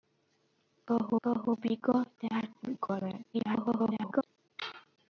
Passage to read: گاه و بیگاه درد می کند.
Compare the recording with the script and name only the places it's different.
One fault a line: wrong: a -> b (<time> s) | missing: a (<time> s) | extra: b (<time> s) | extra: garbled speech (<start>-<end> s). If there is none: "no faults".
extra: گاه (1.2 s)
extra: garbled speech (3.3-4.2 s)